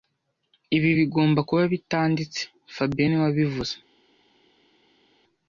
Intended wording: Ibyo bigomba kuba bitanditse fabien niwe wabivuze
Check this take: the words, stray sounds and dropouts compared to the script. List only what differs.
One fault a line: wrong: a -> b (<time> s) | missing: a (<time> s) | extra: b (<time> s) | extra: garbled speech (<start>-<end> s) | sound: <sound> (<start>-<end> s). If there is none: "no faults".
wrong: Ibyo -> Ibi (0.8 s)